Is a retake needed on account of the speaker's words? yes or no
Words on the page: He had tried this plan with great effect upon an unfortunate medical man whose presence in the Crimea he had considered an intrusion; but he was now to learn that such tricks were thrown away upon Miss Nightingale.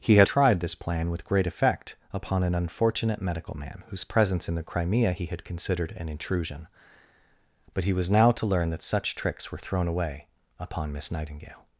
no